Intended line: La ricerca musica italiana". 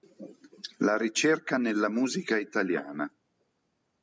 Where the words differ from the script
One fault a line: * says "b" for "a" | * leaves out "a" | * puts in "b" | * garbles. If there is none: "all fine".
* puts in "nella"